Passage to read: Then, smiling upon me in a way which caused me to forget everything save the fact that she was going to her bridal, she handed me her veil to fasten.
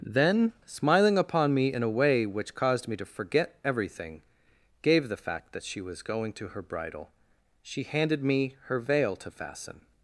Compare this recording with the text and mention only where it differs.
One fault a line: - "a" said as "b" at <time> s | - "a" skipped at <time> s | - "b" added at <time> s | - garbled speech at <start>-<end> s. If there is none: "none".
- "save" said as "gave" at 4.8 s